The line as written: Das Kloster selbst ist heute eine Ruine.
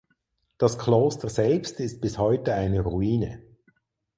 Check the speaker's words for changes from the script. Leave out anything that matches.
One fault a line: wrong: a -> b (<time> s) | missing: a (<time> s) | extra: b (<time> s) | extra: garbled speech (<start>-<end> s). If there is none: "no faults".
extra: bis (2.0 s)